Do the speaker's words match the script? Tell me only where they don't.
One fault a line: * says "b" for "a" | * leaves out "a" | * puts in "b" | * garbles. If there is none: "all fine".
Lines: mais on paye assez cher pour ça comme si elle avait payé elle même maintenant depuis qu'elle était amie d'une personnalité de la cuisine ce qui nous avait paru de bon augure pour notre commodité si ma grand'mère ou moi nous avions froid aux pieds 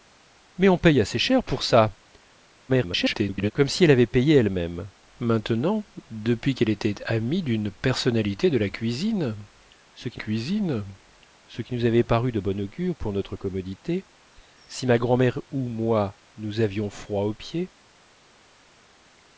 * garbles
* puts in "cuisine ce qui"